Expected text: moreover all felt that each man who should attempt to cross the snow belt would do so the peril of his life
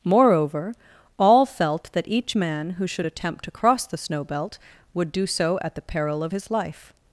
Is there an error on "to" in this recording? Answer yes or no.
no